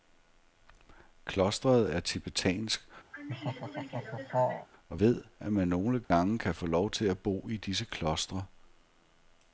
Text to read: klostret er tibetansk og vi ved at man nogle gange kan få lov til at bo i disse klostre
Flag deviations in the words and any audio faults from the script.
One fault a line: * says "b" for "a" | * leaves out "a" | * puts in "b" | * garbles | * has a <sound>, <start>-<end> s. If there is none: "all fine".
* has a laugh, 3.1-4.7 s
* leaves out "vi"
* has a dropout, 6.0-6.1 s